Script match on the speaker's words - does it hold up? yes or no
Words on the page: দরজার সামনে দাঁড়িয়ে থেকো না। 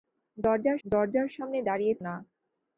no